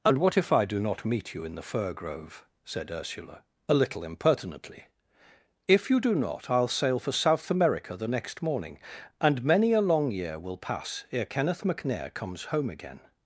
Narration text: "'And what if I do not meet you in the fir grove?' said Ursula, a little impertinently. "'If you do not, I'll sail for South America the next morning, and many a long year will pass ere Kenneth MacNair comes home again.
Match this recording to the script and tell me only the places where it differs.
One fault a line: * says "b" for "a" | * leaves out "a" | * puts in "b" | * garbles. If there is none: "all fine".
all fine